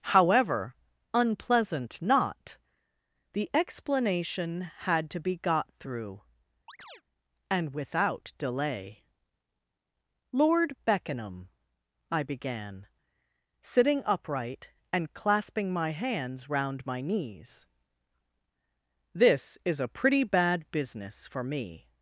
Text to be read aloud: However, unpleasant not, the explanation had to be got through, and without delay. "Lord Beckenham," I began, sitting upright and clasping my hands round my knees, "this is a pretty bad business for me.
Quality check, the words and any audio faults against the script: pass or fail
fail